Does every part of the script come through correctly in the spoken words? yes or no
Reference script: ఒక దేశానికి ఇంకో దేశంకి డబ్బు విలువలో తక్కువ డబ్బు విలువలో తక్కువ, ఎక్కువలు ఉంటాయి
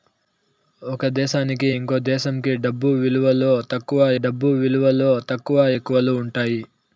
yes